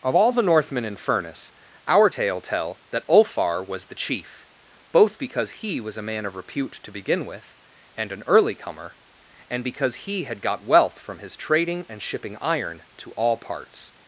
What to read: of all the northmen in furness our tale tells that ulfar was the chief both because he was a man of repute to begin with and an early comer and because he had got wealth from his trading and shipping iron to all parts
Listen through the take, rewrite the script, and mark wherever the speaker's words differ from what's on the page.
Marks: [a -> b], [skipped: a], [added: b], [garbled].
of all the northmen in furness our tale [tells -> tell] that ulfar was the chief both because he was a man of repute to begin with and an early comer and because he had got wealth from his trading and shipping iron to all parts